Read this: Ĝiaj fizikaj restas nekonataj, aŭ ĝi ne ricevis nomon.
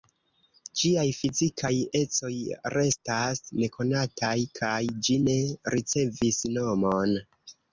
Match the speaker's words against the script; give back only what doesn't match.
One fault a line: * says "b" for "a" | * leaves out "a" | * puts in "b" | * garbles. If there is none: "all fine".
* puts in "ecoj"
* says "kaj" for "aŭ"